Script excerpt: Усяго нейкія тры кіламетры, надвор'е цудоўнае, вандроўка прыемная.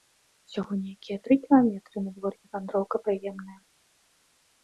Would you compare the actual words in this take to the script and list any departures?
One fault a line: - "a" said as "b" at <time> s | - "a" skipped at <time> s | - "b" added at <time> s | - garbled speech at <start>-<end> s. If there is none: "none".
- "цудоўнае" skipped at 2.5 s